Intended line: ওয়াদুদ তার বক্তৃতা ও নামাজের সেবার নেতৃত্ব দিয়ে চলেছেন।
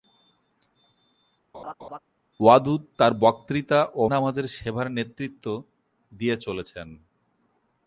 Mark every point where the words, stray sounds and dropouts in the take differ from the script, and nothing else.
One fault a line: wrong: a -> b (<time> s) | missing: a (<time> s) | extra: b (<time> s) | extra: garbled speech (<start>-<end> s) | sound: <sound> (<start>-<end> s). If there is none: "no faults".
sound: laugh (1.5-2.0 s)